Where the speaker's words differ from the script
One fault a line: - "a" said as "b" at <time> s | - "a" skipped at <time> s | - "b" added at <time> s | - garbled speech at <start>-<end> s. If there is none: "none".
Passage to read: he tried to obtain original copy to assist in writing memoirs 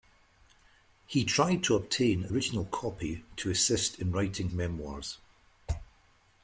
none